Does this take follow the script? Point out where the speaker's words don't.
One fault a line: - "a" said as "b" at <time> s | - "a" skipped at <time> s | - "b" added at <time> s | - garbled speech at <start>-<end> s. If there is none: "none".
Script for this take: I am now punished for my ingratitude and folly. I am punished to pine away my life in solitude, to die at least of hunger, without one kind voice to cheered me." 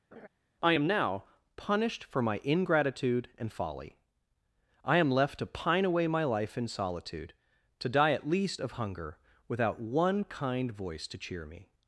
- "punished" said as "left" at 5.1 s
- "cheered" said as "cheer" at 11.2 s